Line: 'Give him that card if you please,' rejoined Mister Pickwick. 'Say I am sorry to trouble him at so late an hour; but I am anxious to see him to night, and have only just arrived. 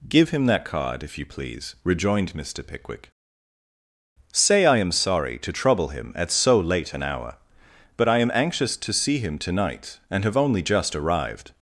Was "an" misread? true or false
false